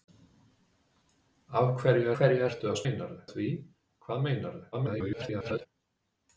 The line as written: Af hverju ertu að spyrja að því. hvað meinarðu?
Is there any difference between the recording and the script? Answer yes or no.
yes